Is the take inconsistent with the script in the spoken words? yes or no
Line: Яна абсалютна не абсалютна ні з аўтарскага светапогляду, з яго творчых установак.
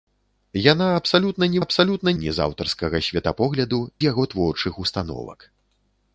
no